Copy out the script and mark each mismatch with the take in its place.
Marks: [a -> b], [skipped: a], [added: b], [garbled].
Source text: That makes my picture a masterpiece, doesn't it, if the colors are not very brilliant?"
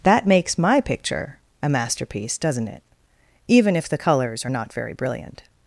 That makes my picture a masterpiece, doesn't it, [added: even] if the colors are not very brilliant?"